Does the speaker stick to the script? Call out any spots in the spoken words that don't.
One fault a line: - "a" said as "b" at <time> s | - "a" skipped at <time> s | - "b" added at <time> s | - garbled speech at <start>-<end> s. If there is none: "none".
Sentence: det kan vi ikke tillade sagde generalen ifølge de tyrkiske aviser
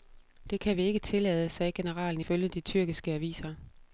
none